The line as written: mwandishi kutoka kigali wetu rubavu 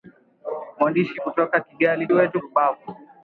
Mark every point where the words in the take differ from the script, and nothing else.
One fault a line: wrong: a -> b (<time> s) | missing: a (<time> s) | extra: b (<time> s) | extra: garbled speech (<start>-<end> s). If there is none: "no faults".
no faults